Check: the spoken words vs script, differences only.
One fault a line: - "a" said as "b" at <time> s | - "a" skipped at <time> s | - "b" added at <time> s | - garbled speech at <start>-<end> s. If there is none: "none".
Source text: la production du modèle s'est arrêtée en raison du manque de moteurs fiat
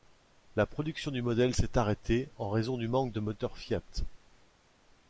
none